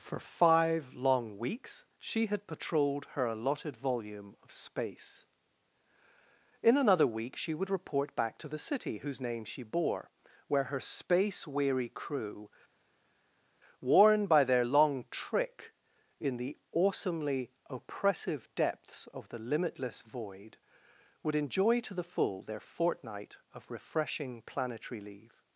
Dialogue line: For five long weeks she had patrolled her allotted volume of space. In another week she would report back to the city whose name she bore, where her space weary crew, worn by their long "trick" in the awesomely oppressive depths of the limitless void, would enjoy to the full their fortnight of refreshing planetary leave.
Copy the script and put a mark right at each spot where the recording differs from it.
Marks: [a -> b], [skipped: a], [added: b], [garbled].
For five long weeks she had patrolled her allotted volume of space. In another week she would report back to the city whose name she bore, where her space weary crew, worn by their long "trick" in the awesomely oppressive depths of the limitless void, would enjoy to the full their fortnight of refreshing planetary leave.